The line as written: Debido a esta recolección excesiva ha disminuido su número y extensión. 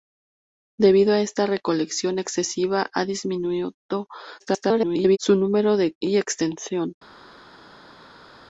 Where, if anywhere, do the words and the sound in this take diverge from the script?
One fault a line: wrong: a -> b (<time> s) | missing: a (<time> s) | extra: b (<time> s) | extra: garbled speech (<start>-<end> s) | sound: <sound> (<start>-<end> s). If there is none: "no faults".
extra: garbled speech (4.4-5.2 s)